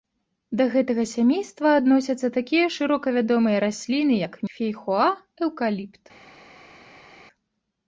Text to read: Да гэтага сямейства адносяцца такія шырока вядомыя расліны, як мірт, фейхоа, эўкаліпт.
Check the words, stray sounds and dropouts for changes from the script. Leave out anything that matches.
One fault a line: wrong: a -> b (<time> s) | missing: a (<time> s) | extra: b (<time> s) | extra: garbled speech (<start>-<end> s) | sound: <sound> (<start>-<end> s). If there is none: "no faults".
missing: мірт (4.4 s)